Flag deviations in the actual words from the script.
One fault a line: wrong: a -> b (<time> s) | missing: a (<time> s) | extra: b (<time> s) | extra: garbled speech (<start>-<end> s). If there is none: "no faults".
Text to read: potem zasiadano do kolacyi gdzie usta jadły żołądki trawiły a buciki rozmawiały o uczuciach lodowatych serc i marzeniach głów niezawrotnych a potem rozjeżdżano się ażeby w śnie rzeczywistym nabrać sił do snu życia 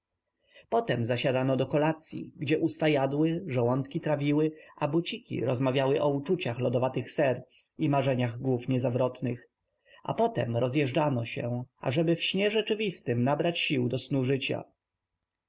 no faults